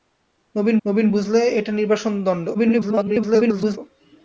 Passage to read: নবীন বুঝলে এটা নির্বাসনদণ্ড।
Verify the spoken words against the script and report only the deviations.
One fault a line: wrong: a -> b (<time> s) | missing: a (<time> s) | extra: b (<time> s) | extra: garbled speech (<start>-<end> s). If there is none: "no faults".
extra: নবীন (0.8 s)
extra: garbled speech (2.5-3.8 s)